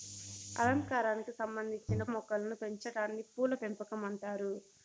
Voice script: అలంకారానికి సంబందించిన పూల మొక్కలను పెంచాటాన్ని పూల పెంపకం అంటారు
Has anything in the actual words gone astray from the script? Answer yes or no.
yes